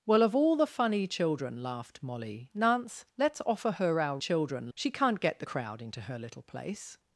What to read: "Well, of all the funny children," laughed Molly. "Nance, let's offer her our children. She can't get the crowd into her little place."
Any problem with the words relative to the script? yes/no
no